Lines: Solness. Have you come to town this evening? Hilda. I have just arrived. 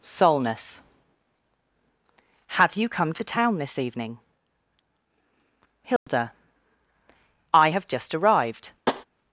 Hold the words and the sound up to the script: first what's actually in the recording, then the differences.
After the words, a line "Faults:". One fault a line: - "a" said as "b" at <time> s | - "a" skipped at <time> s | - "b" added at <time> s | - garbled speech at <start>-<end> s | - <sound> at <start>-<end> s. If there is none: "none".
Solness. Have you come to town this evening? Hilda. I have just arrived.
Faults:
- dropout at 6.0-6.1 s
- tap at 8.9-9.0 s